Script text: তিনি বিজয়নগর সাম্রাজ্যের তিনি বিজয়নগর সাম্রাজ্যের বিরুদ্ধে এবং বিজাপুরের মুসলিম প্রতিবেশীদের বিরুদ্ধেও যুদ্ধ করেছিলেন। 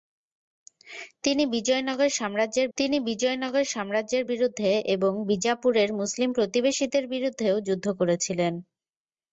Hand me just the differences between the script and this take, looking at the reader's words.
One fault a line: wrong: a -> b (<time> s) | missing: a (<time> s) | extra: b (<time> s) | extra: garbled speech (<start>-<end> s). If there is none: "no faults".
no faults